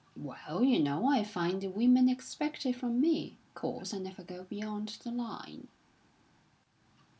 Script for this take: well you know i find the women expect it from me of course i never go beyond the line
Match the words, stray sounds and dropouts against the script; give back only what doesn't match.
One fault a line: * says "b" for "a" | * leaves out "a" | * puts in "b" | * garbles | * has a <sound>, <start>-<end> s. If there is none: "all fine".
* leaves out "of"